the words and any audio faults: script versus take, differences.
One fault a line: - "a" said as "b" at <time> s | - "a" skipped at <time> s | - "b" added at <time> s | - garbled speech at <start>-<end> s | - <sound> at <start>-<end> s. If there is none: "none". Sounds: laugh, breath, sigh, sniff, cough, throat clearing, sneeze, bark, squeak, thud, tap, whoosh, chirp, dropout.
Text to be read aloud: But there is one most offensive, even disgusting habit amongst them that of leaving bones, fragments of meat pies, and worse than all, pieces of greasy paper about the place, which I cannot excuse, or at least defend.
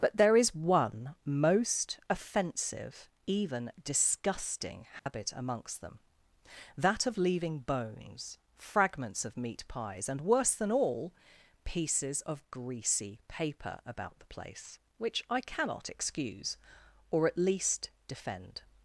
- dropout at 5.0-5.1 s